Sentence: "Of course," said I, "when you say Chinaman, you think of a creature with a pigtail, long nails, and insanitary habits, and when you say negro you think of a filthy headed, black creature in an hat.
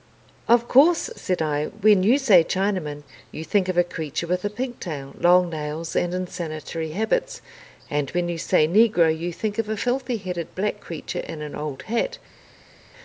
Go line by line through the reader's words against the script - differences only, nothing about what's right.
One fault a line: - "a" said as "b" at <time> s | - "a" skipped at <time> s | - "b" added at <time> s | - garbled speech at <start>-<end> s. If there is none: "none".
- "old" added at 11.5 s